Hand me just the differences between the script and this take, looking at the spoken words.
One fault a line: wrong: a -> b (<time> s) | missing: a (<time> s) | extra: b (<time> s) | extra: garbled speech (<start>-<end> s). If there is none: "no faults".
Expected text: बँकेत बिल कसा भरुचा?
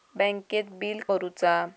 missing: कसा (1.0 s)